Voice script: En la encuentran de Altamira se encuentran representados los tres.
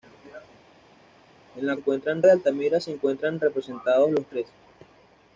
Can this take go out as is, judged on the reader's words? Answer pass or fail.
pass